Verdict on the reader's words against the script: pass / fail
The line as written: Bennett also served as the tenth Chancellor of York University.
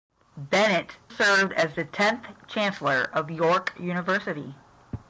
fail